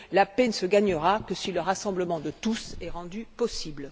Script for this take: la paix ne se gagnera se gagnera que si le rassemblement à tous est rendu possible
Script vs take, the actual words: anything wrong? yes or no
yes